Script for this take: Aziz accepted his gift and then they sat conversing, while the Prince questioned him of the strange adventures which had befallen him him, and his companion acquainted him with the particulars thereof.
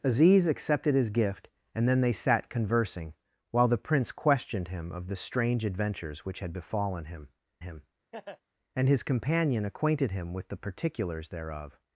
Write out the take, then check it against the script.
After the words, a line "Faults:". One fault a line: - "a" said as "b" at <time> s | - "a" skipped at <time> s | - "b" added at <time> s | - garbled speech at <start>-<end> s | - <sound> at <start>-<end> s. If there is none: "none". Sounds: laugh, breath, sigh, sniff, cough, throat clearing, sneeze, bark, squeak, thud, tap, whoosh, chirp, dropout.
Aziz accepted his gift and then they sat conversing, while the Prince questioned him of the strange adventures which had befallen him him, and his companion acquainted him with the particulars thereof.
Faults:
- laugh at 8.1-8.4 s